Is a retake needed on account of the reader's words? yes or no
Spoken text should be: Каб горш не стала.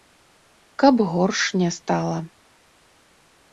no